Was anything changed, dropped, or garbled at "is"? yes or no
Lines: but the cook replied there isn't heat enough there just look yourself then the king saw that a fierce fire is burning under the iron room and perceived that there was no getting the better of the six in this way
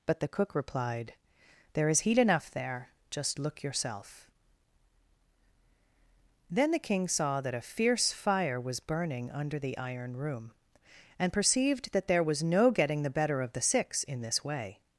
yes